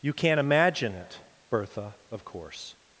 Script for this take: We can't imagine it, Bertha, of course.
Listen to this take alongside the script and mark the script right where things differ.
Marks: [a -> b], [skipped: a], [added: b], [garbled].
[We -> You] can't imagine it, Bertha, of course.